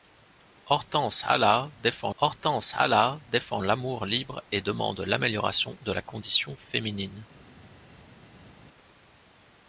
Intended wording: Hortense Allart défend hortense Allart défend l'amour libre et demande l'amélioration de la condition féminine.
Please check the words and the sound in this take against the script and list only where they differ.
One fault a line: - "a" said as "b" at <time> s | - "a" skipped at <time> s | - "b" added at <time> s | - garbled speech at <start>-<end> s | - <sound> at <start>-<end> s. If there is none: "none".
none